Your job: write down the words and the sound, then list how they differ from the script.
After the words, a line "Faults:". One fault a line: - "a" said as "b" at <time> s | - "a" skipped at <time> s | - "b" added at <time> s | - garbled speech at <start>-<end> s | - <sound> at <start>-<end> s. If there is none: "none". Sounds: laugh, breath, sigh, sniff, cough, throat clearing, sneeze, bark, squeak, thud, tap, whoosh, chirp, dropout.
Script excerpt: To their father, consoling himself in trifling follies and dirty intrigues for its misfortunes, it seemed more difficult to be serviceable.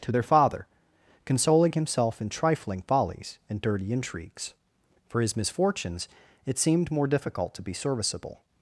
To their father, consoling himself in trifling follies and dirty intrigues for his misfortunes, it seemed more difficult to be serviceable.
Faults:
- "its" said as "his" at 5.2 s